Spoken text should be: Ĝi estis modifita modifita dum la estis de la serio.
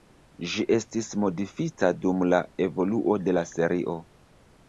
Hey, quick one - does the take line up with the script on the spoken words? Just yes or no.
no